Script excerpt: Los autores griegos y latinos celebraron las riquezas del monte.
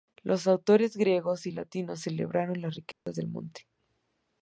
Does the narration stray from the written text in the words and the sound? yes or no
yes